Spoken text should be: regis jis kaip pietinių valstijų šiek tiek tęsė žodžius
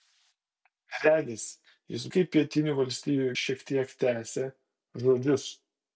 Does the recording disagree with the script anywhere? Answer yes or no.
no